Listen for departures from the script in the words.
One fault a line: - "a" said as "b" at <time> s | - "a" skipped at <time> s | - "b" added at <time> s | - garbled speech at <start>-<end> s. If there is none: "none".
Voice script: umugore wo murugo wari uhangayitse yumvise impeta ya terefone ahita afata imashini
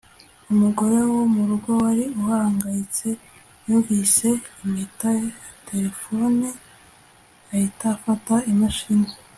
none